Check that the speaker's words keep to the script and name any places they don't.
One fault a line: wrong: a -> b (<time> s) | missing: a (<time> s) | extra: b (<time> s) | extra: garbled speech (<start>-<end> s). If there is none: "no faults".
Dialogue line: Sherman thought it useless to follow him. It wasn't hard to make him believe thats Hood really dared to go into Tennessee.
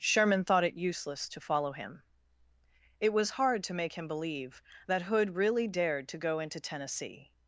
wrong: wasn't -> was (3.1 s)
wrong: thats -> that (4.9 s)